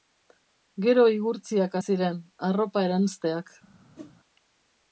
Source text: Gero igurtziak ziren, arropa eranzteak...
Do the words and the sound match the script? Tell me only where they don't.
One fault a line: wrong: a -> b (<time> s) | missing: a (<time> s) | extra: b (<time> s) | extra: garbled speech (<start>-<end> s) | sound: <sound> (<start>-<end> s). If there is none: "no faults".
sound: whoosh (3.9-4.1 s)